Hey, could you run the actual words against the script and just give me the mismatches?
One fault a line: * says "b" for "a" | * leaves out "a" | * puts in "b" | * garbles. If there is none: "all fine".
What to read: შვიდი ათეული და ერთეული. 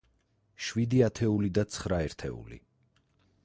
* puts in "ცხრა"